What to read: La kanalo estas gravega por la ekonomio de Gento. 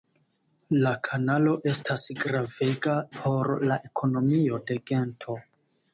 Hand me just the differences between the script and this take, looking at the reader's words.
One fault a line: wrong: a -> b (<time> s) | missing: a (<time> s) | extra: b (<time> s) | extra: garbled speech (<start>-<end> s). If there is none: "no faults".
no faults